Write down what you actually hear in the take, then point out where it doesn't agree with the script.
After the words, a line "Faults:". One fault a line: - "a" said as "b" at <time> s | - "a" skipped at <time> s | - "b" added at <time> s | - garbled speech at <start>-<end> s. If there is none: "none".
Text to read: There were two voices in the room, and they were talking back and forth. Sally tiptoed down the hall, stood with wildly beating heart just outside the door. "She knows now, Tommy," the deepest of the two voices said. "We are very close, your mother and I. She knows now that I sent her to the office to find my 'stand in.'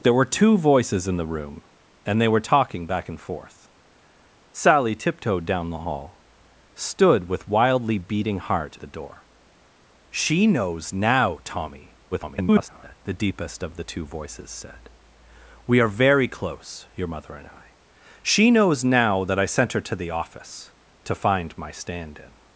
There were two voices in the room, and they were talking back and forth. Sally tiptoed down the hall, stood with wildly beating heart the door. "She knows now, Tommy," [garbled] the deepest of the two voices said. "We are very close, your mother and I. She knows now that I sent her to the office to find my 'stand in.'
Faults:
- "just outside" skipped at 8.8 s
- garbled speech at 12.1-13.0 s